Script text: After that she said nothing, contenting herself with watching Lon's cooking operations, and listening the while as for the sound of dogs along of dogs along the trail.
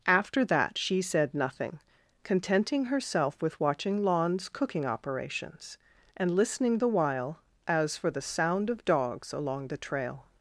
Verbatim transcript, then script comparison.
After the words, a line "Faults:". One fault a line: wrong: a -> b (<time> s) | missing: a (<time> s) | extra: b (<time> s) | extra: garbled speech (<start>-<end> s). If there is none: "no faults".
After that she said nothing, contenting herself with watching Lon's cooking operations, and listening the while as for the sound of dogs along the trail.
Faults:
missing: of dogs along (9.7 s)